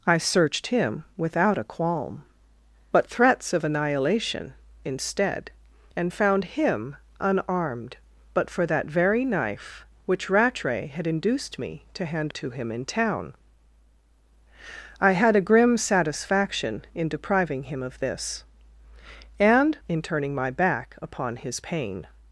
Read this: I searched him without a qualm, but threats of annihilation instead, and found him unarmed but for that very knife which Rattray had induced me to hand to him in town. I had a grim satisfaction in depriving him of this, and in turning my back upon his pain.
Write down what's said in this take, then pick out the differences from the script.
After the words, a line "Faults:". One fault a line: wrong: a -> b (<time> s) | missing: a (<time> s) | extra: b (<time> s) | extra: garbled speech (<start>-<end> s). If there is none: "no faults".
I searched him without a qualm, but threats of annihilation instead, and found him unarmed but for that very knife which Rattray had induced me to hand to him in town. I had a grim satisfaction in depriving him of this, and in turning my back upon his pain.
Faults:
no faults